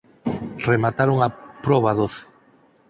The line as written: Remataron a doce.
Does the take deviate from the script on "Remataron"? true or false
false